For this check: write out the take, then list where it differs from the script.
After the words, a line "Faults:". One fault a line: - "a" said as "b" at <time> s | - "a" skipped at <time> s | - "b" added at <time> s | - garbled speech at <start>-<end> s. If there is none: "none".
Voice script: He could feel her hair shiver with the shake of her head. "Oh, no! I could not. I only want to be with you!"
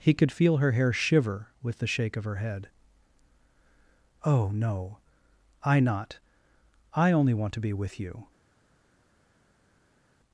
He could feel her hair shiver with the shake of her head. "Oh, no! I not. I only want to be with you!"
Faults:
- "could" skipped at 5.8 s